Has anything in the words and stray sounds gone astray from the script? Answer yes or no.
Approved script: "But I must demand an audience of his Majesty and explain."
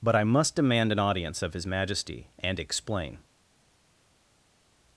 no